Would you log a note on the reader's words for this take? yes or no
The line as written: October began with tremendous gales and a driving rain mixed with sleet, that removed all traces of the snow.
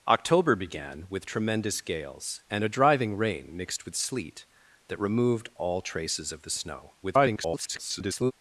yes